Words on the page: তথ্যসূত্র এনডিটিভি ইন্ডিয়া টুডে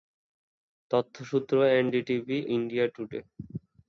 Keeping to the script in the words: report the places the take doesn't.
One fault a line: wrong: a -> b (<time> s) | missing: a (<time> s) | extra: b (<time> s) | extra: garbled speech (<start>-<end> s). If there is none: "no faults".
no faults